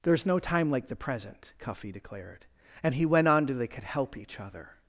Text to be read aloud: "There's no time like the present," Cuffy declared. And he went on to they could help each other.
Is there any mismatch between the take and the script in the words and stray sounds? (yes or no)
no